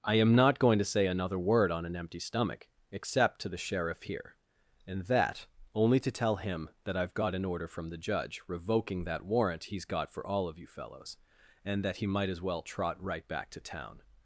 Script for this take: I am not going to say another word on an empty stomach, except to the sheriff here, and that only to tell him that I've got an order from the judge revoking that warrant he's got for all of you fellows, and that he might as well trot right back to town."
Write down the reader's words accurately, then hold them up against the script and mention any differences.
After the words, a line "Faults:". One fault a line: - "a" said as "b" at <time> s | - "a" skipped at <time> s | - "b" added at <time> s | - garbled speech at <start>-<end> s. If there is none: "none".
I am not going to say another word on an empty stomach, except to the sheriff here, and that only to tell him that I've got an order from the judge revoking that warrant he's got for all of you fellows, and that he might as well trot right back to town."
Faults:
none